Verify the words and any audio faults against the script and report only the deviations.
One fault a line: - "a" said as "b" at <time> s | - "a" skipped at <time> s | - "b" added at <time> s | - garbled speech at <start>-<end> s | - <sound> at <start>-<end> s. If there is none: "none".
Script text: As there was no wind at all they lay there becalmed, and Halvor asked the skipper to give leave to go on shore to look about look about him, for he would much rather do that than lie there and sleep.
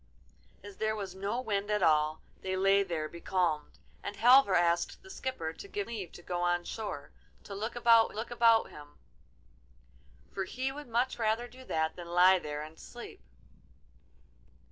none